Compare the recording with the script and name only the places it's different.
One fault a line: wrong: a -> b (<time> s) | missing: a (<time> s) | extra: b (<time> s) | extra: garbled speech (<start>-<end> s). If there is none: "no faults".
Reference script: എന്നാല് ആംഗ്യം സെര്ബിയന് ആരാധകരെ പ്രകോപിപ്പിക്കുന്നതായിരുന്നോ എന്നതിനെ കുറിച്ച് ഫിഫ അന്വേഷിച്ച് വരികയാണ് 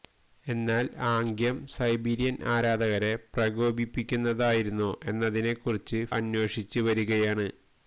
missing: ഫിഫ (6.0 s)